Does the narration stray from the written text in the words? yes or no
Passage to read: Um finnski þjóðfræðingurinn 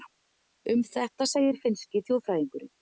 yes